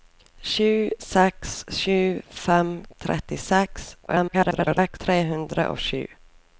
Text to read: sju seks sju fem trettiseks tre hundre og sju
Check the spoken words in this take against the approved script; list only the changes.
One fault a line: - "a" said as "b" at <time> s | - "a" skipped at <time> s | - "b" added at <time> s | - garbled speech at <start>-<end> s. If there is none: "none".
- garbled speech at 4.1-5.0 s